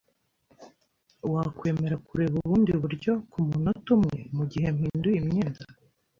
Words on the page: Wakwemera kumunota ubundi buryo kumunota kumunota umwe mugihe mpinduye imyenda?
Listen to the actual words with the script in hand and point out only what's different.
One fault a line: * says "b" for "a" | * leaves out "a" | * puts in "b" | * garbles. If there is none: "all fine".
* says "kureba" for "kumunota"
* leaves out "kumunota"